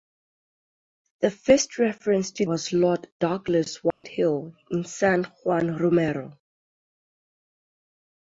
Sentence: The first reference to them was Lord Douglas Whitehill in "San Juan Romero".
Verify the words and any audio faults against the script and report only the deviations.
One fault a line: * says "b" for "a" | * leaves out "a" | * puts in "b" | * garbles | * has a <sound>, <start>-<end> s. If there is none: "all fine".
* leaves out "them"
* has a dropout, 3.9-4.0 s